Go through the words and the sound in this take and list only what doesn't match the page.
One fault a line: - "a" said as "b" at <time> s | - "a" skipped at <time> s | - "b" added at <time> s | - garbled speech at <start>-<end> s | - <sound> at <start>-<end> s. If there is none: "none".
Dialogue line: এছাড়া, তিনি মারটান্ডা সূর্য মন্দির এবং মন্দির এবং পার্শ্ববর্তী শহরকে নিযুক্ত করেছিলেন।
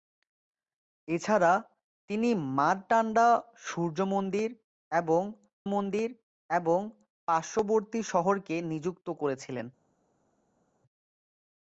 none